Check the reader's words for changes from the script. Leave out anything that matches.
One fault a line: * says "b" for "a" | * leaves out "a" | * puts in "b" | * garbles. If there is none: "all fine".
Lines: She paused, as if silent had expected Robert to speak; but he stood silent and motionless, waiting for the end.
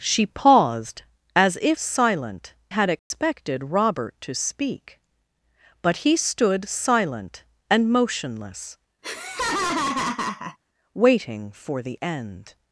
all fine